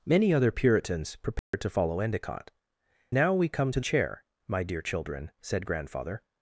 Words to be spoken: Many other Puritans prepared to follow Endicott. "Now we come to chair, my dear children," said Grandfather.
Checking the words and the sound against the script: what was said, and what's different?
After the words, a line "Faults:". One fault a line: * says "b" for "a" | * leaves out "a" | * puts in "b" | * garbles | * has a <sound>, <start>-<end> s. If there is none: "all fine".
Many other Puritans prepared to follow Endicott. "Now we come to chair, my dear children," said Grandfather.
Faults:
* has a dropout, 1.4-1.5 s